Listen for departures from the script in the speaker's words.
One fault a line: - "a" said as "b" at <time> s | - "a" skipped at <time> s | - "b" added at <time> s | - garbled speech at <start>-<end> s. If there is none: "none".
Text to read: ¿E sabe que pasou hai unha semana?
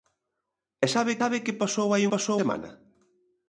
- "sabe" added at 1.2 s
- "unha" said as "pasou" at 2.1 s